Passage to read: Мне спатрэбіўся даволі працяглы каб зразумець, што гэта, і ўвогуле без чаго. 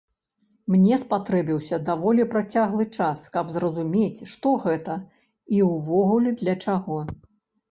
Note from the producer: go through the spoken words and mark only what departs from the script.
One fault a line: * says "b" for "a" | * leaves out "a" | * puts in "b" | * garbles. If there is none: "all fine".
* puts in "час"
* says "для" for "без"